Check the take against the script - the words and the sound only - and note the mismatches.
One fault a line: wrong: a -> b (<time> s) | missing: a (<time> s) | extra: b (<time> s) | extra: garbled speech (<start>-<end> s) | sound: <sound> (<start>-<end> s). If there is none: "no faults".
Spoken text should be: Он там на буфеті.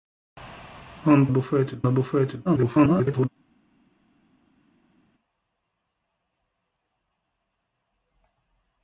wrong: там -> буфеті (1.3 s)
extra: garbled speech (2.4-3.3 s)